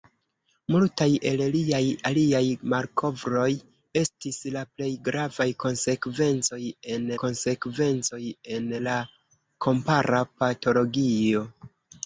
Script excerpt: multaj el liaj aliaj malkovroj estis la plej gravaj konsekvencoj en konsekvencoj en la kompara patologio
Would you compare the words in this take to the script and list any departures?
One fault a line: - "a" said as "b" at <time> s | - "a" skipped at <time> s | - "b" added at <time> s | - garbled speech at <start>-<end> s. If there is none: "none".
none